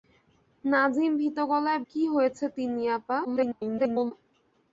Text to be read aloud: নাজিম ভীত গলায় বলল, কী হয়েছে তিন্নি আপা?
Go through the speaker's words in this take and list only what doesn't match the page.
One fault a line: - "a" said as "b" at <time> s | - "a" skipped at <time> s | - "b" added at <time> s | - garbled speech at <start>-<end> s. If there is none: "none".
- "বলল" skipped at 1.8 s
- garbled speech at 3.2-4.1 s